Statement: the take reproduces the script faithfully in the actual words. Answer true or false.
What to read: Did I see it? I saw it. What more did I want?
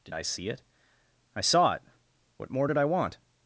true